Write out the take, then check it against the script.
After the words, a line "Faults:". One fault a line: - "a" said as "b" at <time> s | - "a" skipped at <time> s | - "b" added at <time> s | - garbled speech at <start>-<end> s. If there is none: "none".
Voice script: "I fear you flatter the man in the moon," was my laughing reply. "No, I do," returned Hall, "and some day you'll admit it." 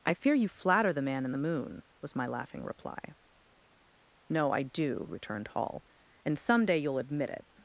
"I fear you flatter the man in the moon," was my laughing reply. "No, I do," returned Hall, "and some day you'll admit it."
Faults:
none